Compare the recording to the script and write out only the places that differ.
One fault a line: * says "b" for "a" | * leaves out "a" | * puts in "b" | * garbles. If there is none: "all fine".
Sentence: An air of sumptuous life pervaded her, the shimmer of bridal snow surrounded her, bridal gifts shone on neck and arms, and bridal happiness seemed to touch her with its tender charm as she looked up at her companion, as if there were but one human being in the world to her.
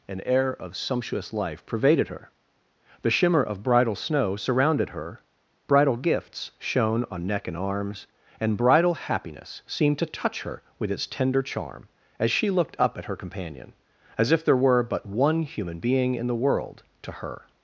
all fine